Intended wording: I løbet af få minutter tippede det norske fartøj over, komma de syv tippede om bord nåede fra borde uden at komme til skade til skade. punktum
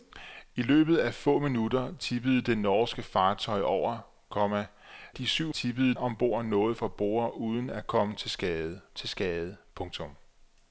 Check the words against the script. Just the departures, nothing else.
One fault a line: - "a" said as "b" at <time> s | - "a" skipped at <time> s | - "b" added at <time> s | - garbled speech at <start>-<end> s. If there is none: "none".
none